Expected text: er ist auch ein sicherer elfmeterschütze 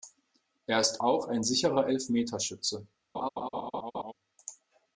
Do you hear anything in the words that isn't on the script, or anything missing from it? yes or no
no